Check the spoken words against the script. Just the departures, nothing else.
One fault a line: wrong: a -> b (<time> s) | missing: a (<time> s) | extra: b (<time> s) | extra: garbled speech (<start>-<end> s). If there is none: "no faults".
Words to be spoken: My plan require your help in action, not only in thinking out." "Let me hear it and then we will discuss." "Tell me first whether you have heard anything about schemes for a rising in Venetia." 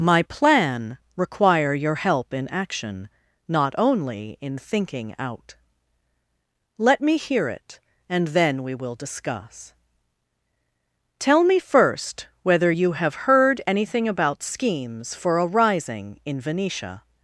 no faults